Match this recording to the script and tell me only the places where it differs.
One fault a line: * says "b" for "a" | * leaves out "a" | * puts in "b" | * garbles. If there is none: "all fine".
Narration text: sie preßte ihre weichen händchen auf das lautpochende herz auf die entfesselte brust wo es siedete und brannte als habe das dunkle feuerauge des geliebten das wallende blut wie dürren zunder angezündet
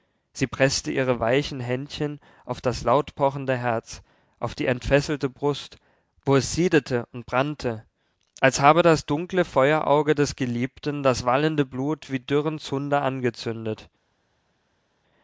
all fine